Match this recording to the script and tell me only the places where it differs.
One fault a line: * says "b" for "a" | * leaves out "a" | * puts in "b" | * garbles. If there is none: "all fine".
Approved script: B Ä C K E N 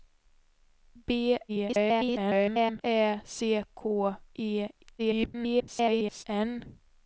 * garbles
* garbles